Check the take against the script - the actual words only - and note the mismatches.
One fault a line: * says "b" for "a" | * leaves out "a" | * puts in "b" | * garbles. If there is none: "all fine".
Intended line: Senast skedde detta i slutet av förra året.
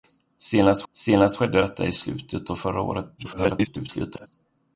* puts in "senast"
* garbles